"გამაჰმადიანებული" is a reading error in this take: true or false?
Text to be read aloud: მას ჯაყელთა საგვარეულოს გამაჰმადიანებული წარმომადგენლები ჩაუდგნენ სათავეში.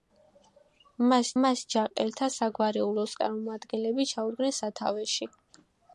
true